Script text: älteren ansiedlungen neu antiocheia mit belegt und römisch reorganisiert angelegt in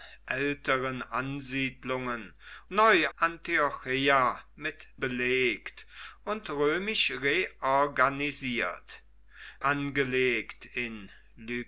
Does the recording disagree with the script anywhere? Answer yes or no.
no